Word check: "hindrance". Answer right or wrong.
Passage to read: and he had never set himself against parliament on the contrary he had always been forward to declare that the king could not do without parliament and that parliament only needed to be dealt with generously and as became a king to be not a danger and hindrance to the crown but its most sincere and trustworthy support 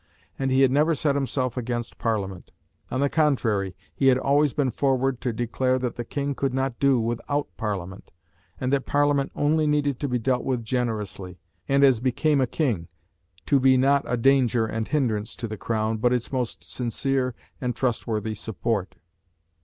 right